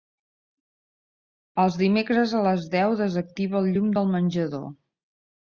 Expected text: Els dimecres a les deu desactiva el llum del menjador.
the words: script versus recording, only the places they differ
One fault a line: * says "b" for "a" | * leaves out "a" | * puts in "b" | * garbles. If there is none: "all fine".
all fine